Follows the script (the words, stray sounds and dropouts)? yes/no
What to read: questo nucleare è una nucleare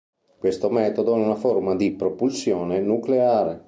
no